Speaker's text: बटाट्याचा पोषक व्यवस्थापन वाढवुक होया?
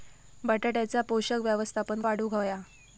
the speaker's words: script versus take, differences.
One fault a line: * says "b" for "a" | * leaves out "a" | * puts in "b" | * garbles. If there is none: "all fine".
all fine